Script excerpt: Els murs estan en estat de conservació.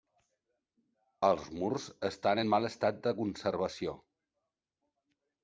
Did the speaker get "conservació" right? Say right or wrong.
right